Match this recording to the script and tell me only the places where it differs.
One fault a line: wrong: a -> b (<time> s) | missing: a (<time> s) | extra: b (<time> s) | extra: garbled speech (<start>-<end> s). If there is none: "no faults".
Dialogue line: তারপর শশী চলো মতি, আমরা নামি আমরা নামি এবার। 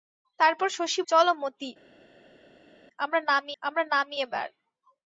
no faults